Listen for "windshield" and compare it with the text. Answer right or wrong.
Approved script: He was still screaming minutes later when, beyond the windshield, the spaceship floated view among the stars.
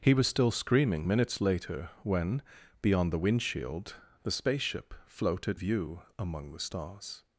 right